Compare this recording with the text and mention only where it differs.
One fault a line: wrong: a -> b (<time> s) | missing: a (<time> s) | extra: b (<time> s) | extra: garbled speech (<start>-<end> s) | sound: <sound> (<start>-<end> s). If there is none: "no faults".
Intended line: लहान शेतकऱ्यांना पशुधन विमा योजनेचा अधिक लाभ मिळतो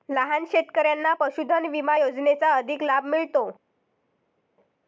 no faults